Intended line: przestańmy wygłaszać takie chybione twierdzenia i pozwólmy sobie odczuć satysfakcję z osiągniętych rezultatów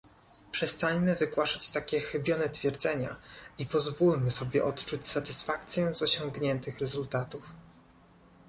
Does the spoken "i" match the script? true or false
true